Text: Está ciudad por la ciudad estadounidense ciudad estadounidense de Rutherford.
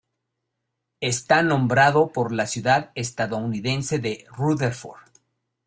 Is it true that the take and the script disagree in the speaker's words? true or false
true